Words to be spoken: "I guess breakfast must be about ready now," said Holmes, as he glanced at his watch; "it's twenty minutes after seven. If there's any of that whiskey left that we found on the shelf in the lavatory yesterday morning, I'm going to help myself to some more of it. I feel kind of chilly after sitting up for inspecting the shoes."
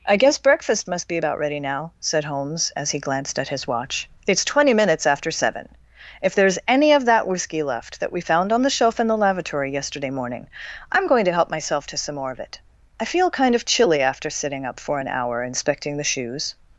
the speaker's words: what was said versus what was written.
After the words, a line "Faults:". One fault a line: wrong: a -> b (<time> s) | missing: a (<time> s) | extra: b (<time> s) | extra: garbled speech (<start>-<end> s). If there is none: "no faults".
"I guess breakfast must be about ready now," said Holmes, as he glanced at his watch; "it's twenty minutes after seven. If there's any of that whiskey left that we found on the shelf in the lavatory yesterday morning, I'm going to help myself to some more of it. I feel kind of chilly after sitting up for an hour inspecting the shoes."
Faults:
extra: an hour (15.0 s)